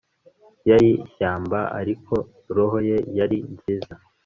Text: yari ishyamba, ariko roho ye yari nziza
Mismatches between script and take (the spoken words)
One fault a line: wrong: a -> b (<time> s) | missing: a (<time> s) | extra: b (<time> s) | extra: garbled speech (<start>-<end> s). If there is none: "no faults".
no faults